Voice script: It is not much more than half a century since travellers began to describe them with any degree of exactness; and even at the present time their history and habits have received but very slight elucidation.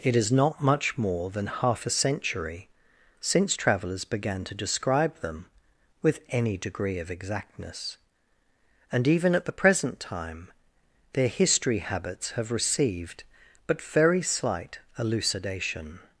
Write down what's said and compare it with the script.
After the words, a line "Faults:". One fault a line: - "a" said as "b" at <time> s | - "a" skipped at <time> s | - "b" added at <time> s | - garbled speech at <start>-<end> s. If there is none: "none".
It is not much more than half a century since travellers began to describe them with any degree of exactness; and even at the present time their history habits have received but very slight elucidation.
Faults:
- "and" skipped at 11.8 s